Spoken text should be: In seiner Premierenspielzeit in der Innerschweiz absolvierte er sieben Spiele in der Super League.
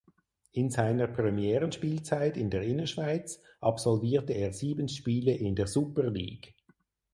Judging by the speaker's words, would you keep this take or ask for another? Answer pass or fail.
pass